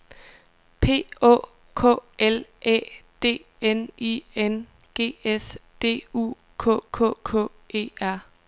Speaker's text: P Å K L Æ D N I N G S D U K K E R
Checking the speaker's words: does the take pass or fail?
fail